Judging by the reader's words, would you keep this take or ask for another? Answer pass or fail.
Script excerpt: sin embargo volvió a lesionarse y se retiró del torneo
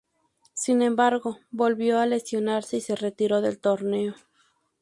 pass